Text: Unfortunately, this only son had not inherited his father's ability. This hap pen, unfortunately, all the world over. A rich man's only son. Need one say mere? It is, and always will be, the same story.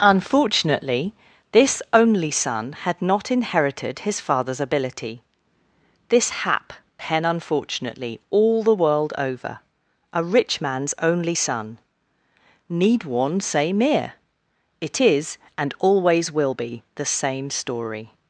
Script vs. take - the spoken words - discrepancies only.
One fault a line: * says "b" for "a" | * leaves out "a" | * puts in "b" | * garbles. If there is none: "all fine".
all fine